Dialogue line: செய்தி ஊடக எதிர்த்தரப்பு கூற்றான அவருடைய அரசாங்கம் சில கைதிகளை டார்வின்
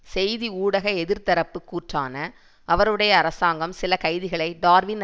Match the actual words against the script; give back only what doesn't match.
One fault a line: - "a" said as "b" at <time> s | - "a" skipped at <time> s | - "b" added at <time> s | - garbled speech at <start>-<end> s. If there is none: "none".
none